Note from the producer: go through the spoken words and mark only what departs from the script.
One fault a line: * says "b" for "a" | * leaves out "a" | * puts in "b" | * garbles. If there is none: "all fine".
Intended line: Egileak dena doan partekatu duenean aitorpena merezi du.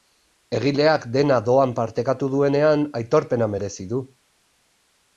all fine